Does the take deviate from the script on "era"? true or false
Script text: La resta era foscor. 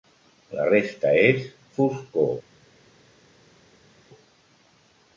true